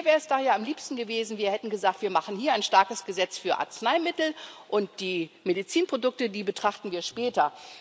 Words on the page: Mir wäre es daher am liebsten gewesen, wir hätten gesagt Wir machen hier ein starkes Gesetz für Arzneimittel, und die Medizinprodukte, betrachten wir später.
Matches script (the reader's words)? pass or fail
fail